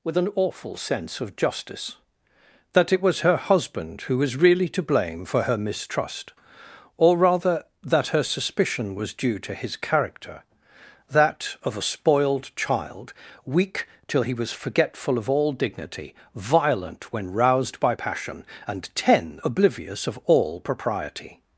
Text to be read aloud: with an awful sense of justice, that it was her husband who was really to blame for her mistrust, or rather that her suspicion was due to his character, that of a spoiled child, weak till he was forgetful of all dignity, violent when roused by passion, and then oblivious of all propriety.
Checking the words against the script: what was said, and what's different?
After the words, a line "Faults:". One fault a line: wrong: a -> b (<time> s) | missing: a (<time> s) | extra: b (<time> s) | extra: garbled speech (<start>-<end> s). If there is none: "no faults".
with an awful sense of justice, that it was her husband who was really to blame for her mistrust, or rather that her suspicion was due to his character, that of a spoiled child, weak till he was forgetful of all dignity, violent when roused by passion, and ten oblivious of all propriety.
Faults:
wrong: then -> ten (18.9 s)